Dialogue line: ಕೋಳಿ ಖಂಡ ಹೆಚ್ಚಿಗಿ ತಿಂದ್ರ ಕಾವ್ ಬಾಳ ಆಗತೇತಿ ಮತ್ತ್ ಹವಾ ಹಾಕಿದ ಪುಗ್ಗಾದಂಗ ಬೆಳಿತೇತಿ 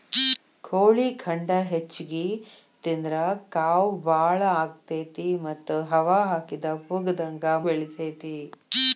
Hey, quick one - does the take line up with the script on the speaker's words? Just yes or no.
yes